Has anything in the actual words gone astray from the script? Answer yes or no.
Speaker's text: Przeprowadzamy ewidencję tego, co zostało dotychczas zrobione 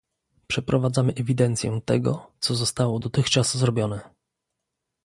no